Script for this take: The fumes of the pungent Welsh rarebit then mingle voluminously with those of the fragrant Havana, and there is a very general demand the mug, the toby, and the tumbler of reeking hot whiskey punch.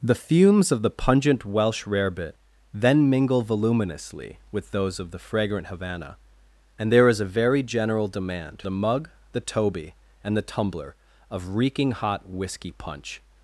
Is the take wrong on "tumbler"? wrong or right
right